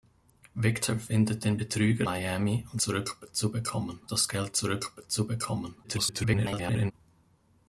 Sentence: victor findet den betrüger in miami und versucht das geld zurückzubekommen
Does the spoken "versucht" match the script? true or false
false